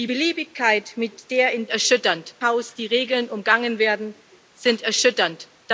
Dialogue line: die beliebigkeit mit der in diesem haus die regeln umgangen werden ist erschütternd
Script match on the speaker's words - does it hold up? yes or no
no